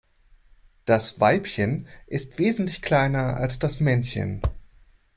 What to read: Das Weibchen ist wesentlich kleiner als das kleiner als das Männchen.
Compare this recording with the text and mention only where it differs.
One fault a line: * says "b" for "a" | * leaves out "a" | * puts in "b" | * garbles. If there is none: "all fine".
* leaves out "kleiner als das"